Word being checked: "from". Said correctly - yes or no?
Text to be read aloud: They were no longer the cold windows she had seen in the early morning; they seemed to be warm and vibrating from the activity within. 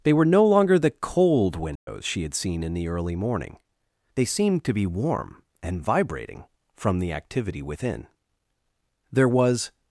yes